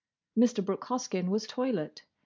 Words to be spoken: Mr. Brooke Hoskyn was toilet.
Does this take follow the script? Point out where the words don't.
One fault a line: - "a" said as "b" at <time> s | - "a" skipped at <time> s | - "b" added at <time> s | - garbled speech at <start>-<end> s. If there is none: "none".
none